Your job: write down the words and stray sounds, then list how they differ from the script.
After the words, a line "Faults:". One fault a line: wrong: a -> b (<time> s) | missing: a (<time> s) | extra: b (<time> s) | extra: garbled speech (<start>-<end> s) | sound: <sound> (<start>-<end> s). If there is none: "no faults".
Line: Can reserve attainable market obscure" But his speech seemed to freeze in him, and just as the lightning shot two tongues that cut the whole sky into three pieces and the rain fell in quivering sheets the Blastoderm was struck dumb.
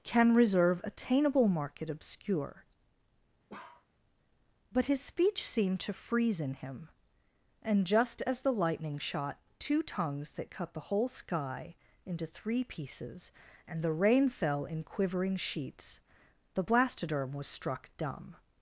Can reserve attainable market obscure" But his speech seemed to freeze in him, and just as the lightning shot two tongues that cut the whole sky into three pieces and the rain fell in quivering sheets the Blastoderm was struck dumb.
Faults:
sound: bark (3.5-3.9 s)